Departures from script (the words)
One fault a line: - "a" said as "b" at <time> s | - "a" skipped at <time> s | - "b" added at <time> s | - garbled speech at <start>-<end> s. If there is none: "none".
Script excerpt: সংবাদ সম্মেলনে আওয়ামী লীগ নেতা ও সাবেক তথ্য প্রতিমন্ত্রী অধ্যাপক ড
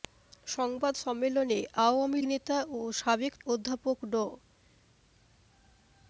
- "লীগ" skipped at 2.2 s
- "তথ্য প্রতিমন্ত্রী" skipped at 3.3 s